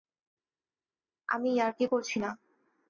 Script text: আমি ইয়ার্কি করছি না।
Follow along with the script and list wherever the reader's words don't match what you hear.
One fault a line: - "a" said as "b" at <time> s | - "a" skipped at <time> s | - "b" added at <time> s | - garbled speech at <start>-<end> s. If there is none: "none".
none